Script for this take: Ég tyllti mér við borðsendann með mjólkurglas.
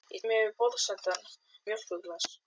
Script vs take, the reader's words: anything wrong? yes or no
yes